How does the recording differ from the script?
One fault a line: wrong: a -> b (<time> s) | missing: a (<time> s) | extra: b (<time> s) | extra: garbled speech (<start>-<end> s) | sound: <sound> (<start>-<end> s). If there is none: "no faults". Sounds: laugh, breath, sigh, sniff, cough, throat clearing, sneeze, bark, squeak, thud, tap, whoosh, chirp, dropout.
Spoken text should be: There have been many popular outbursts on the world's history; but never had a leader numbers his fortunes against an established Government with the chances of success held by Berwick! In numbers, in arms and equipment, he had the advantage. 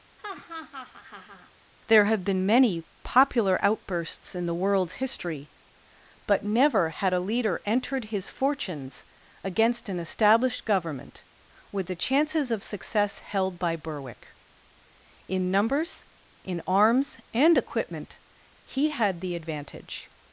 sound: laugh (0.2-1.5 s)
wrong: on -> in (4.3 s)
wrong: numbers -> entered (7.7 s)